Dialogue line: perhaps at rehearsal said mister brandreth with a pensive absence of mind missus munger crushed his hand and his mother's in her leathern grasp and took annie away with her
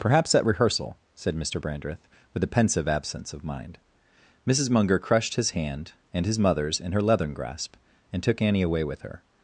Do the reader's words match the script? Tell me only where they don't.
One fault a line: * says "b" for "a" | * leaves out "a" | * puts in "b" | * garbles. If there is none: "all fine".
all fine